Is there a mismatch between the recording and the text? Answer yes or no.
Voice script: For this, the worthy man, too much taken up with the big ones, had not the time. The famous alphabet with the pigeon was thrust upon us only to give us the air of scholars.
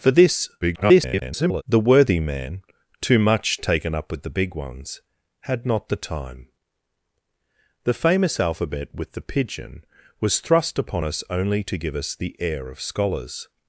yes